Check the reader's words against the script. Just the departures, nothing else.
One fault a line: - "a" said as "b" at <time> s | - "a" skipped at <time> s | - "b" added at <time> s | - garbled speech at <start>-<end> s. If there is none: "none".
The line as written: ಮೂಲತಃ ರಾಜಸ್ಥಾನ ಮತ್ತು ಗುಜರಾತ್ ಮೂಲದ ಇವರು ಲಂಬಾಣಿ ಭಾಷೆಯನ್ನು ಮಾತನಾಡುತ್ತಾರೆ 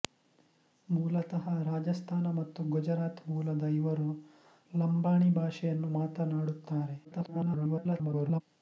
- garbled speech at 7.0-8.4 s